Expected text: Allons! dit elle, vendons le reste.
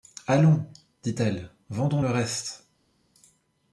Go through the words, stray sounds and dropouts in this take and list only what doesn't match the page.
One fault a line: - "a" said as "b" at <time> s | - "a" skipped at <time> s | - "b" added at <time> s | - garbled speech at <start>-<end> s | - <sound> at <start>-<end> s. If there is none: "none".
none